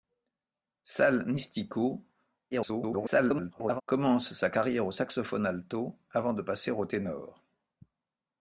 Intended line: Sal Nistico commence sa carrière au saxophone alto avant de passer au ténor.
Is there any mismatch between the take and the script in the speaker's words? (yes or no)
yes